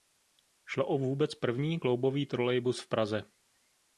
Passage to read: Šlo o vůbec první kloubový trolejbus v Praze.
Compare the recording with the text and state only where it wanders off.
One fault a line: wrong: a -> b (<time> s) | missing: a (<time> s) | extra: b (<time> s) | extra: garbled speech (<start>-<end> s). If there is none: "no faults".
no faults